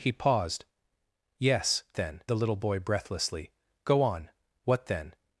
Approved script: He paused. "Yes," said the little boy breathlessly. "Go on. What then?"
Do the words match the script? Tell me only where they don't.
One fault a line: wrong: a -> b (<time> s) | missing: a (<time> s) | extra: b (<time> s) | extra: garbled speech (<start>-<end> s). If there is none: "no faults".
wrong: said -> then (2.0 s)